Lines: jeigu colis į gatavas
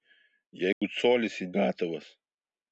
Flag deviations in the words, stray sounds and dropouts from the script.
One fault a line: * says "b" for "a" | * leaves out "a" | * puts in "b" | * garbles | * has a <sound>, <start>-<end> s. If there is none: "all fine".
* has a dropout, 0.7-0.8 s